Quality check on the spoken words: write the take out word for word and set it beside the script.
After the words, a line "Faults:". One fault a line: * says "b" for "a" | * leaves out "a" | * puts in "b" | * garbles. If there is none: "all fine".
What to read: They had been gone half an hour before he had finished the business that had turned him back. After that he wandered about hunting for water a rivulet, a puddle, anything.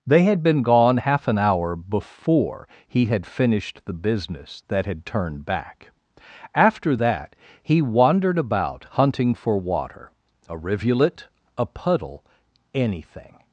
They had been gone half an hour before he had finished the business that had turned back. After that he wandered about hunting for water a rivulet, a puddle, anything.
Faults:
* leaves out "him"